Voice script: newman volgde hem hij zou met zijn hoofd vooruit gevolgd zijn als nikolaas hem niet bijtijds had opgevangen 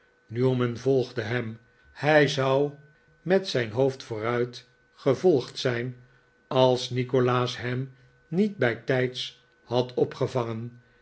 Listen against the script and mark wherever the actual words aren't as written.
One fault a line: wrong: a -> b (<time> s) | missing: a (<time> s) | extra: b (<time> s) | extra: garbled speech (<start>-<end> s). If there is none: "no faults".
no faults